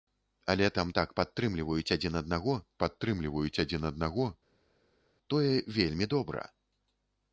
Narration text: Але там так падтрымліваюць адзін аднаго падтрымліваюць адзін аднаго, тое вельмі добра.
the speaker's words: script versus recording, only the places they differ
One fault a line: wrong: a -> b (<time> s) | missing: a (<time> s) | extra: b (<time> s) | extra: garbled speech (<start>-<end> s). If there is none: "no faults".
no faults